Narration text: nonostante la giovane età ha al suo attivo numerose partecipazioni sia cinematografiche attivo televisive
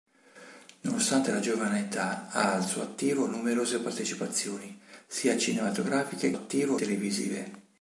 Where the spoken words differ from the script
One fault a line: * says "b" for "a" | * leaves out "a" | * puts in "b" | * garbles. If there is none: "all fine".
all fine